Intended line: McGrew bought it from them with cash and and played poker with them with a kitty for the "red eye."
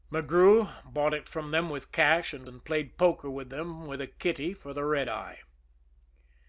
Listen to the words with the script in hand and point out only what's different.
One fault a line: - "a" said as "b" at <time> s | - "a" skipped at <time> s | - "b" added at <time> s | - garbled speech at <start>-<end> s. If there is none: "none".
none